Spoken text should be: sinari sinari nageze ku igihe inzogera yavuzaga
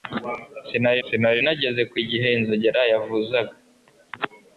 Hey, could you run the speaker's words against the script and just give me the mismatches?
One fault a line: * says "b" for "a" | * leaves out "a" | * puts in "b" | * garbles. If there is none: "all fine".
all fine